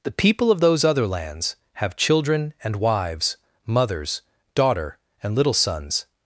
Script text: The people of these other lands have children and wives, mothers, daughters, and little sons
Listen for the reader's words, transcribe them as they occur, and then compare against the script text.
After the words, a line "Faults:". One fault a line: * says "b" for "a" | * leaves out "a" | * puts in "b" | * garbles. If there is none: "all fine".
The people of those other lands have children and wives, mothers, daughter, and little sons
Faults:
* says "those" for "these"
* says "daughter" for "daughters"